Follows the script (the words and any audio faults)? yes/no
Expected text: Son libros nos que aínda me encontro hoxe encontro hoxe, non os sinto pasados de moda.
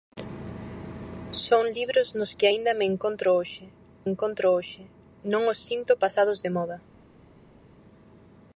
yes